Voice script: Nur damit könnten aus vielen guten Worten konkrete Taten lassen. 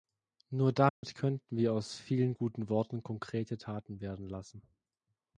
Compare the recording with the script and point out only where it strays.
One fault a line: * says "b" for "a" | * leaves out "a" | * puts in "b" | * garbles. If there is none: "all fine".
* puts in "wir"
* puts in "werden"